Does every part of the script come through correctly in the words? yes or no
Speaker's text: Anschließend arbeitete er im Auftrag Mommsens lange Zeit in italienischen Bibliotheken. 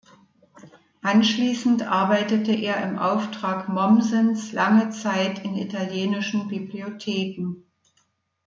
yes